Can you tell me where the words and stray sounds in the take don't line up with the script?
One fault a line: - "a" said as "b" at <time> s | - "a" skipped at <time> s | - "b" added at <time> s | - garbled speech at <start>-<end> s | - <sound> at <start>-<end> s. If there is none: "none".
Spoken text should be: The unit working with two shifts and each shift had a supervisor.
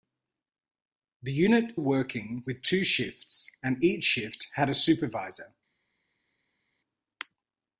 none